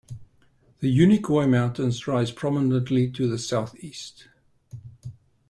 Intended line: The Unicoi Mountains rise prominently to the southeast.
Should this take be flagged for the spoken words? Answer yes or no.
no